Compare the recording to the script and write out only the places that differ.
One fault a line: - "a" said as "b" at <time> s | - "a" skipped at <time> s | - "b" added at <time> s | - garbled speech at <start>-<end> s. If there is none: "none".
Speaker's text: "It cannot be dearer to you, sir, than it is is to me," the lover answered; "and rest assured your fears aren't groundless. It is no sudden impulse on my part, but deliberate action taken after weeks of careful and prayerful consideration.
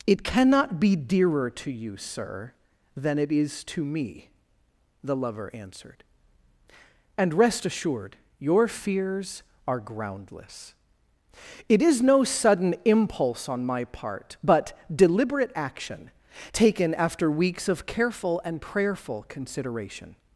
- "is" skipped at 3.6 s
- "aren't" said as "are" at 9.7 s